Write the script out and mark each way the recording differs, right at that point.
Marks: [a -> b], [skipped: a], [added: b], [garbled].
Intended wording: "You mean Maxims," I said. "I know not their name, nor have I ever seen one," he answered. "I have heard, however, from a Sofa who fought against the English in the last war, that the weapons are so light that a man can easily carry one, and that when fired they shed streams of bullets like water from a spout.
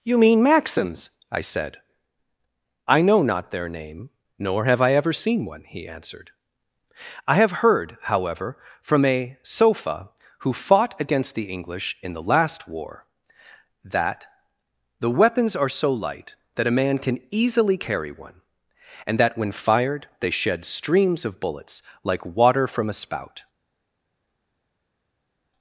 "You mean Maxims," I said. "I know not their name, nor have I ever seen one," he answered. "I have heard, however, from a Sofa who fought against the English in the last war, that the weapons are so light that a man can easily carry one, and that when fired they shed streams of bullets like water from a spout.